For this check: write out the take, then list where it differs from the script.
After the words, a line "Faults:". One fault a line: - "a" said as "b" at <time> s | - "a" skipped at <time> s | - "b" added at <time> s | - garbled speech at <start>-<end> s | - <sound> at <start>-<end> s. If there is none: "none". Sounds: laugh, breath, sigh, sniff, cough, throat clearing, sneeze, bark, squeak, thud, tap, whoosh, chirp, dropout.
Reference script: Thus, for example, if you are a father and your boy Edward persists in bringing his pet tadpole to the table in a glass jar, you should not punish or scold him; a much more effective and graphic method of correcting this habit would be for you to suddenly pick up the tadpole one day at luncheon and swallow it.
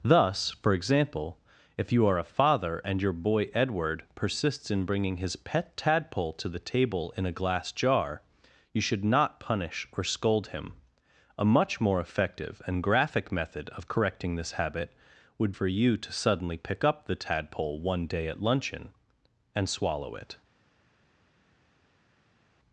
Thus, for example, if you are a father and your boy Edward persists in bringing his pet tadpole to the table in a glass jar, you should not punish or scold him; a much more effective and graphic method of correcting this habit would for you to suddenly pick up the tadpole one day at luncheon and swallow it.
Faults:
- "be" skipped at 15.5 s